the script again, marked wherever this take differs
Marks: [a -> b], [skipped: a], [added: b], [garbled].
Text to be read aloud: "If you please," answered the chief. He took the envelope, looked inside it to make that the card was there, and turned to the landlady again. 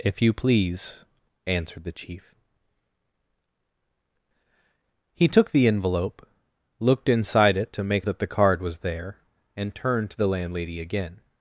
"If you please," answered the chief. He took the envelope, looked inside it to make that the card was there, and turned to the landlady again.